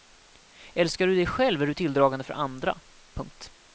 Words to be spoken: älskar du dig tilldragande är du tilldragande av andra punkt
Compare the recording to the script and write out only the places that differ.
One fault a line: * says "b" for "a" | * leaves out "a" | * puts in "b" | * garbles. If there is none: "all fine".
* says "själv" for "tilldragande"
* says "för" for "av"